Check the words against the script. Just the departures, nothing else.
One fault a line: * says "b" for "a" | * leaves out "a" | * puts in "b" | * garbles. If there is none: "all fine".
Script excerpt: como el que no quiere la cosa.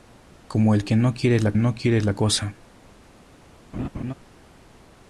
* puts in "no quiere la"